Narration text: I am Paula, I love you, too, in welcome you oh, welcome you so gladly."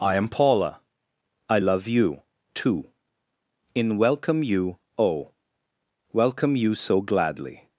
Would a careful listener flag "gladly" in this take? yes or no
no